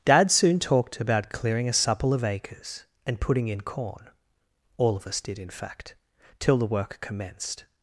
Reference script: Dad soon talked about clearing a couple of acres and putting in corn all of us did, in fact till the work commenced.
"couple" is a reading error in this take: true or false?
true